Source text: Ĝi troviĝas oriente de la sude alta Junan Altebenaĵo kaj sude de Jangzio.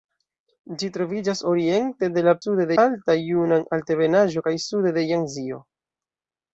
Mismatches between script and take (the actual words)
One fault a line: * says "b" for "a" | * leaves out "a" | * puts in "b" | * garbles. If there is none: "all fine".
all fine